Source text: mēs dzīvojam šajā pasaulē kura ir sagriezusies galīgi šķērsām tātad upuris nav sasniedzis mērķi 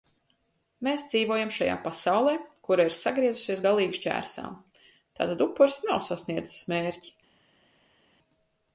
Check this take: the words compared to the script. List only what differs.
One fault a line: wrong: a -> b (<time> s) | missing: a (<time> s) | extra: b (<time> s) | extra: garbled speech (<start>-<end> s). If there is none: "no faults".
no faults